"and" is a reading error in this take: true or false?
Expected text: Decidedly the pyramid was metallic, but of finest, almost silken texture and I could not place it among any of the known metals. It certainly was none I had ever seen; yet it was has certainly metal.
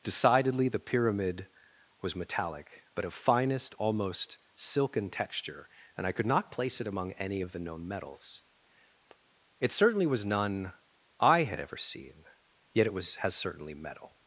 false